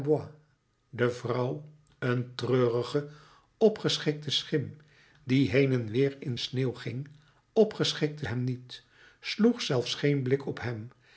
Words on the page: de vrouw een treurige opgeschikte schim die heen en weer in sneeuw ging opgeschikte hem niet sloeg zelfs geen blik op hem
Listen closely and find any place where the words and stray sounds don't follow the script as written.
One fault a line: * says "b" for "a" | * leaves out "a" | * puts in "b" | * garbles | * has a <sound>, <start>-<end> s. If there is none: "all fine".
all fine